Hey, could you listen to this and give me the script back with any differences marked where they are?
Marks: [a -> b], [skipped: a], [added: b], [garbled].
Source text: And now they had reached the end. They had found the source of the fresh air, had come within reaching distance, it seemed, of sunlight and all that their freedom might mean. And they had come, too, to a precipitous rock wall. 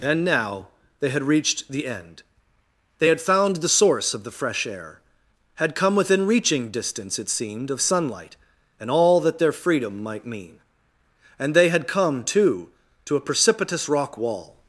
And now they had reached the end. They had found the source of the fresh air, had come within reaching distance, it seemed, of sunlight and all that their freedom might mean. And they had come, too, to a precipitous rock wall.